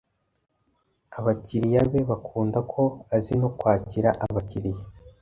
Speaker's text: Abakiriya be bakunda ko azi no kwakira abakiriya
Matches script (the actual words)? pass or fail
pass